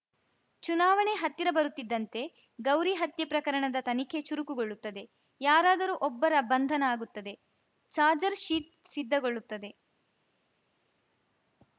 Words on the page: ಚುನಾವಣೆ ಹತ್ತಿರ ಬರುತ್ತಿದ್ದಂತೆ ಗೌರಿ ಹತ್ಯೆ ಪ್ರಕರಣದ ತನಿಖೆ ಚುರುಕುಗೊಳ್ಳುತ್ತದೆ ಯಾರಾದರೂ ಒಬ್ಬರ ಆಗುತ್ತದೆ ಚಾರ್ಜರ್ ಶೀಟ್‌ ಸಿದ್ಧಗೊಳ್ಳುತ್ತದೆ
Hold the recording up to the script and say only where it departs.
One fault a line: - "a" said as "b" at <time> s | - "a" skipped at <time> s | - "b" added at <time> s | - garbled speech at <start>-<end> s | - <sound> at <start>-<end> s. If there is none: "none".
- "ಬಂಧನ" added at 6.5 s